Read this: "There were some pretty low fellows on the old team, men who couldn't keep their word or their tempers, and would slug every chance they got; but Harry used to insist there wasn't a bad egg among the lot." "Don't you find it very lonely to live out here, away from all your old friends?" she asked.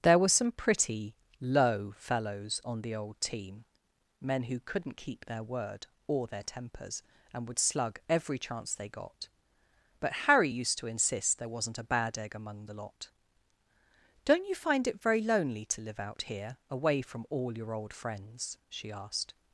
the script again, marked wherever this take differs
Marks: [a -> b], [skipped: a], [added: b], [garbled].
"There were some pretty low fellows on the old team, men who couldn't keep their word or their tempers, and would slug every chance they got; but Harry used to insist there wasn't a bad egg among the lot." "Don't you find it very lonely to live out here, away from all your old friends?" she asked.